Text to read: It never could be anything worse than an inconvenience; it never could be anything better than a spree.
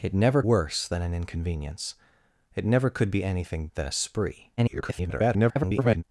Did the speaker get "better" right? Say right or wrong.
wrong